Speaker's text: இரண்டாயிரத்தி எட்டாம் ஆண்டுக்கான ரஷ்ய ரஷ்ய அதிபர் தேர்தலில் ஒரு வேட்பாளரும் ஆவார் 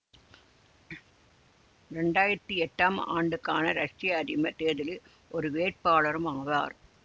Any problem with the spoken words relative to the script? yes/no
yes